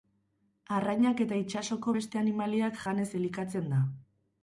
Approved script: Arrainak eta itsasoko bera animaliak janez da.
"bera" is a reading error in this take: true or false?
true